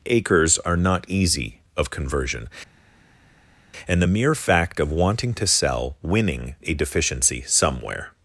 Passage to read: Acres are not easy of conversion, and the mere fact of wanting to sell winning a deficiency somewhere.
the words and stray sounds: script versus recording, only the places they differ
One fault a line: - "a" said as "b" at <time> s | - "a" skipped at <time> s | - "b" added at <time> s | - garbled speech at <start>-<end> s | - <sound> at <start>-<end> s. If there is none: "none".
none